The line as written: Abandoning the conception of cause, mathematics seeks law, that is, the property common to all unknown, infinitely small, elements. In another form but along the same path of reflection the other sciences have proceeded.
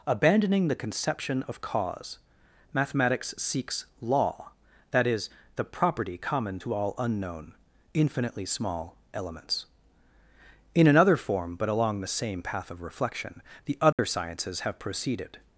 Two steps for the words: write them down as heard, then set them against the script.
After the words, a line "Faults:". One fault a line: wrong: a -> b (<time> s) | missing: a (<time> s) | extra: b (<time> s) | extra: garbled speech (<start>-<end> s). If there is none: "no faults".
Abandoning the conception of cause, mathematics seeks law, that is, the property common to all unknown, infinitely small, elements. In another form but along the same path of reflection the other sciences have proceeded.
Faults:
no faults